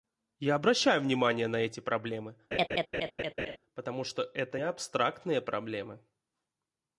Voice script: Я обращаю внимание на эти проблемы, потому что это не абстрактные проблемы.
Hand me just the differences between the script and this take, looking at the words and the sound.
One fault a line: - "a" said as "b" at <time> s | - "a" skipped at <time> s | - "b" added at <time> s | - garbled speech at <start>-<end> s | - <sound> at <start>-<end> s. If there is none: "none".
- laugh at 2.5-3.6 s
- "не" skipped at 4.6 s